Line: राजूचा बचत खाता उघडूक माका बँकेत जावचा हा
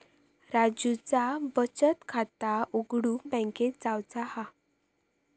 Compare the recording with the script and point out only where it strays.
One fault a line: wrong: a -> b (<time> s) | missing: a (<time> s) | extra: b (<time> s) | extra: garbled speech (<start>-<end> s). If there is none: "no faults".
missing: माका (3.2 s)